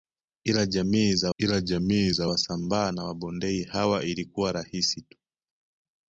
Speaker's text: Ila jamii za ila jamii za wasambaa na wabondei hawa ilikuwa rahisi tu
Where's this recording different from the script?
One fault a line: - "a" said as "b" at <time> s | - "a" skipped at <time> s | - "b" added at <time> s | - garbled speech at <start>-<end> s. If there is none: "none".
none